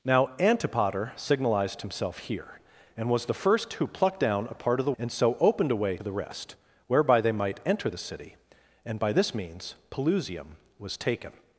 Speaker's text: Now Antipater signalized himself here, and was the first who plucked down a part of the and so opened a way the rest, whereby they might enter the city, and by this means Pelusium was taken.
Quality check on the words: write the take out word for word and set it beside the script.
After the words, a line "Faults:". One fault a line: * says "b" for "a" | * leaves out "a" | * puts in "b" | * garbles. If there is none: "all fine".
Now Antipater signalized himself here, and was the first who plucked down a part of the and so opened a way the rest, whereby they might enter the city, and by this means Pelusium was taken.
Faults:
all fine